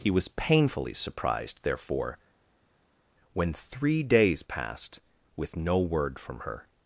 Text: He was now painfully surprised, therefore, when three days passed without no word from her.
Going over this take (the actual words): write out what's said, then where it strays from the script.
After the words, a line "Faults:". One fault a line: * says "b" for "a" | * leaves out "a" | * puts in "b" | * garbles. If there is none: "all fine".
He was painfully surprised, therefore, when three days passed with no word from her.
Faults:
* leaves out "now"
* says "with" for "without"